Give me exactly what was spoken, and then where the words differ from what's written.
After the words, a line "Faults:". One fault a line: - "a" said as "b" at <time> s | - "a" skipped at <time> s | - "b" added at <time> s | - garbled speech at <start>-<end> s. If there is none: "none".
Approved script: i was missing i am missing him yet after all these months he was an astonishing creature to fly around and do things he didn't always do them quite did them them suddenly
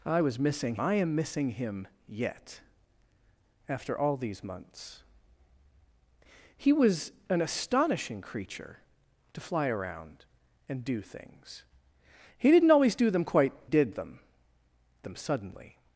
i was missing i am missing him yet after all these months he was an astonishing creature to fly around and do things he didn't always do them quite did them them suddenly
Faults:
none